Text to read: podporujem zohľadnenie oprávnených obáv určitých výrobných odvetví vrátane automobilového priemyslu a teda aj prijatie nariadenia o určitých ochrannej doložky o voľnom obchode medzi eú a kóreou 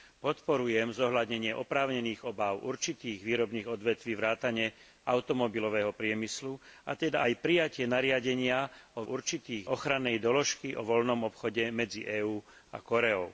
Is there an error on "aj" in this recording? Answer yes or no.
no